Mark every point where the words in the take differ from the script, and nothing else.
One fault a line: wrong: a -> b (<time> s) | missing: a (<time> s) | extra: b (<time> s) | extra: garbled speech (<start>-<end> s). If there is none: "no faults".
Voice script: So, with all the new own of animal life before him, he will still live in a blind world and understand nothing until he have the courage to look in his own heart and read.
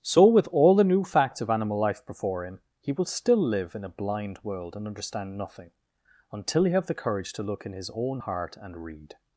wrong: own -> facts (1.0 s)